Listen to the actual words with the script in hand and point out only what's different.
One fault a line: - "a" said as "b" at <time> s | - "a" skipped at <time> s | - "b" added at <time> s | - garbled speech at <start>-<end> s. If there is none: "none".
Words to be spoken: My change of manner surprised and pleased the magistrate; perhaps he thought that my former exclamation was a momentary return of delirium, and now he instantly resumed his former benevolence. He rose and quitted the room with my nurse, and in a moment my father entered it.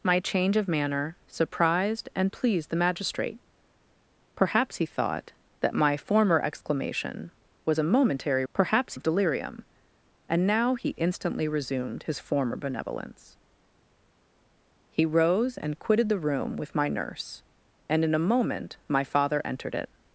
- "return" said as "perhaps" at 8.5 s